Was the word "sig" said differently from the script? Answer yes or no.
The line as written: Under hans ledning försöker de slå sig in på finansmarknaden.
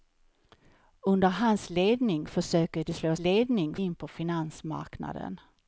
yes